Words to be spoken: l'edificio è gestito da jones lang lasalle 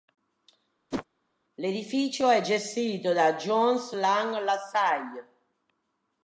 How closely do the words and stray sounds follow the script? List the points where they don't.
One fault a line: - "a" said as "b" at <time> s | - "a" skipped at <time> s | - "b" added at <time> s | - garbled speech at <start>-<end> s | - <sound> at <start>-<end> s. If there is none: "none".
- whoosh at 0.9-1.1 s